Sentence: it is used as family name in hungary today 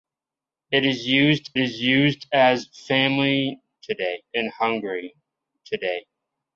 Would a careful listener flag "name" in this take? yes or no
yes